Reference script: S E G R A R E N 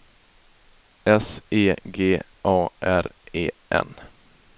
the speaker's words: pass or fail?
fail